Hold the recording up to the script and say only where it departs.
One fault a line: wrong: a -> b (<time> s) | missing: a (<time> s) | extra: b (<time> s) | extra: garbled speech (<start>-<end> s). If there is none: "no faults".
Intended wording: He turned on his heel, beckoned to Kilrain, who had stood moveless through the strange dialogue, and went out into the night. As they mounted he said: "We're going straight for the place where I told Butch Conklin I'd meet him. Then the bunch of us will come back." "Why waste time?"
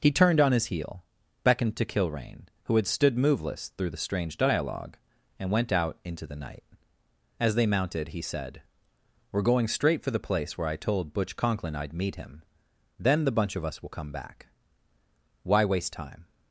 no faults